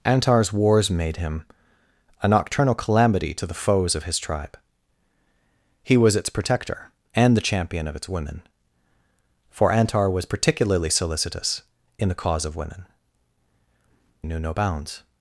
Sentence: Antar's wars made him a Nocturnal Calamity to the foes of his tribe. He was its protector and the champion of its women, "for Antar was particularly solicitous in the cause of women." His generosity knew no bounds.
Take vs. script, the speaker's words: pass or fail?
fail